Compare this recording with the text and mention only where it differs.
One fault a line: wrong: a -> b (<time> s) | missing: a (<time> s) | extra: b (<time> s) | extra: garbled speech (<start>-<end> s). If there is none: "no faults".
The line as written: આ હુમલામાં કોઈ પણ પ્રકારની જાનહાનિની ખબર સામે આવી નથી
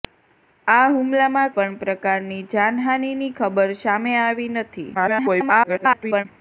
missing: કોઈ (1.5 s)
extra: garbled speech (4.9-6.3 s)